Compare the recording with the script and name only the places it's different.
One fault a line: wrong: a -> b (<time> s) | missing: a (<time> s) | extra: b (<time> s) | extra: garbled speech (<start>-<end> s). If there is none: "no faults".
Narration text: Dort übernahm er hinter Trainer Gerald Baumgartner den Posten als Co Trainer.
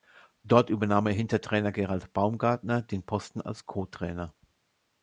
no faults